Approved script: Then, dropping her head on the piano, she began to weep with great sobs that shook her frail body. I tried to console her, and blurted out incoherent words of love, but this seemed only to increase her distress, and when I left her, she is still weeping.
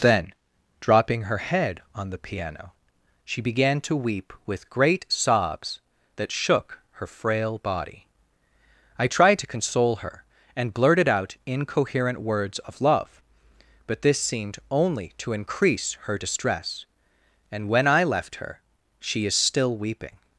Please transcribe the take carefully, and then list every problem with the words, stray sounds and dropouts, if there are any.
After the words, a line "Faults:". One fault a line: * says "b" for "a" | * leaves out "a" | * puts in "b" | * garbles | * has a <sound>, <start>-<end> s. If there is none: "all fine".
Then, dropping her head on the piano, she began to weep with great sobs that shook her frail body. I tried to console her, and blurted out incoherent words of love, but this seemed only to increase her distress, and when I left her, she is still weeping.
Faults:
all fine